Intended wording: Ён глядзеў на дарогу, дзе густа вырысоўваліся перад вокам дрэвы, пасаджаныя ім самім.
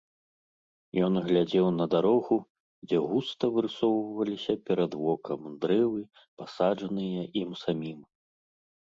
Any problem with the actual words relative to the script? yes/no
no